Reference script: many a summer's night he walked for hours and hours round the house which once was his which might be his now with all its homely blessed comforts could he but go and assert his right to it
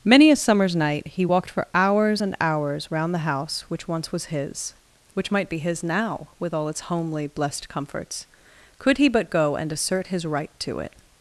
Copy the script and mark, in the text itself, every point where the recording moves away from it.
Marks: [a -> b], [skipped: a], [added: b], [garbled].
many a summer's night he walked for hours and hours round the house which once was his which might be his now with all its homely blessed comforts could he but go and assert his right to it